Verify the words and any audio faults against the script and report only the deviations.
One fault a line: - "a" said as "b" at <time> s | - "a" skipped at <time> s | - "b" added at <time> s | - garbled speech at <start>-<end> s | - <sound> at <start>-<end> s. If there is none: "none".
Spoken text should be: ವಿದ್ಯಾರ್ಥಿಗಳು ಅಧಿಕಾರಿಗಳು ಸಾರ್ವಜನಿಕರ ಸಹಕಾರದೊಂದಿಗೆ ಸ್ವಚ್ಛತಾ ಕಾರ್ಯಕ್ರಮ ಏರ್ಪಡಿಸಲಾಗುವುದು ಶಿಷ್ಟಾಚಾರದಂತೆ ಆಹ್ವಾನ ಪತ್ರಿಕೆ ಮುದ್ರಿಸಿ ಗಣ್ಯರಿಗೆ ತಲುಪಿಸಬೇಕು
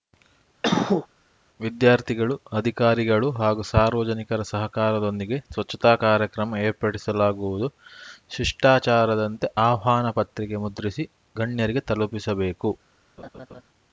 - cough at 0.6-1.1 s
- "ಹಾಗೂ" added at 3.3 s
- laugh at 13.2-13.6 s